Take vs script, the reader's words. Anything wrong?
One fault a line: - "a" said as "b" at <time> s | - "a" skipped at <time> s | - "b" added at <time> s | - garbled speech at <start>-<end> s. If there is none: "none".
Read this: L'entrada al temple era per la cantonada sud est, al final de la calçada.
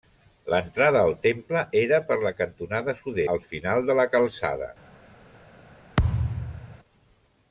- "est" skipped at 3.2 s